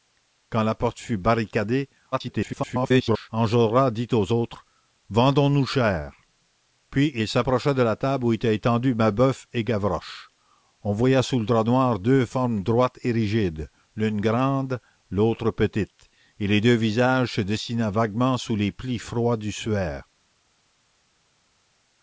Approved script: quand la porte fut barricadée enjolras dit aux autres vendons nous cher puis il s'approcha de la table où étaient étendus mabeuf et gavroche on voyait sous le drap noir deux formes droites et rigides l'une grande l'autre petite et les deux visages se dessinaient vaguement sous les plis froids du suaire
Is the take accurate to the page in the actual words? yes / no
no